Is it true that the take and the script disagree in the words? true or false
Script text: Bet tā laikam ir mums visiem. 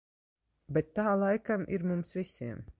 false